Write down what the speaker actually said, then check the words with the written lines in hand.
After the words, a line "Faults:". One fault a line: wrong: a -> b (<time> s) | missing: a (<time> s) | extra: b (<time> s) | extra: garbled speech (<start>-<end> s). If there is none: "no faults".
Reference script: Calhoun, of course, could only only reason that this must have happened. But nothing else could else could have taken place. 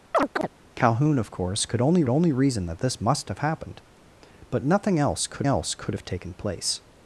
Calhoun, of course, could only only reason that this must have happened. But nothing else could else could have taken place.
Faults:
no faults